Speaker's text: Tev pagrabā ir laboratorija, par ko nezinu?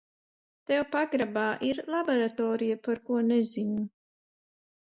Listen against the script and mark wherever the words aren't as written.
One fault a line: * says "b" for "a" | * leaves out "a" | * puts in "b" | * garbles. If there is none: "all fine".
all fine